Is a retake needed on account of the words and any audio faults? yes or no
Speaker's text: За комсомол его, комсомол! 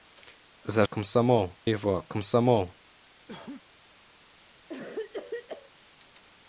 yes